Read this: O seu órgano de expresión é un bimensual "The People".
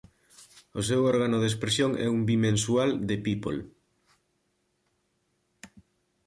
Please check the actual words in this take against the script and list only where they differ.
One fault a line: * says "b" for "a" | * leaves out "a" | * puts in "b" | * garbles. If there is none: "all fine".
all fine